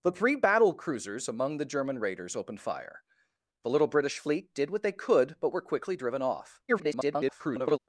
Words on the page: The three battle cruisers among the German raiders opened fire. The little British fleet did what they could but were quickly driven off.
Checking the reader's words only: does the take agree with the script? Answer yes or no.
no